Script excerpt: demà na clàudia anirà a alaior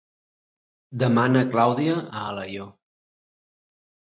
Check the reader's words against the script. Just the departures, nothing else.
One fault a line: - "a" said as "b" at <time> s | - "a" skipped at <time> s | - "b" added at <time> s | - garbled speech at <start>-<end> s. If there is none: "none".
- "anirà" skipped at 2.0 s